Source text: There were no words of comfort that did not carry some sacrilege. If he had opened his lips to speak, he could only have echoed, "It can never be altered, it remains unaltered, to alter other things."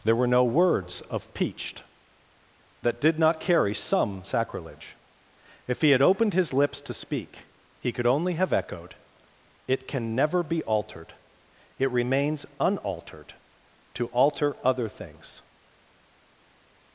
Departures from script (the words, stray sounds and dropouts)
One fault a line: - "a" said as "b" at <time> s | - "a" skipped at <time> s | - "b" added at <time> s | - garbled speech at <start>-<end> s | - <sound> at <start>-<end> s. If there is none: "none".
- "comfort" said as "peached" at 1.3 s